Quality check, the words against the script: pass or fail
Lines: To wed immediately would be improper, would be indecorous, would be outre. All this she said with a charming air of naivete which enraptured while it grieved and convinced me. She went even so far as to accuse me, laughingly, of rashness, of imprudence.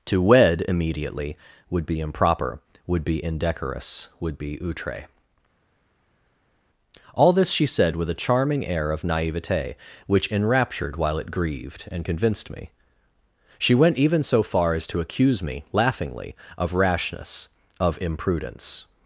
pass